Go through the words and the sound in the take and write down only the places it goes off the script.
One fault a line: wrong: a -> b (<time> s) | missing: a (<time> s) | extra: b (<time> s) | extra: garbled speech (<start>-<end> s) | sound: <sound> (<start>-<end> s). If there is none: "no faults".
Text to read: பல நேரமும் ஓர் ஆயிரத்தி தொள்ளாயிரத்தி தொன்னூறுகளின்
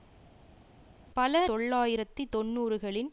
missing: நேரமும் ஓர் ஆயிரத்தி (1.5 s)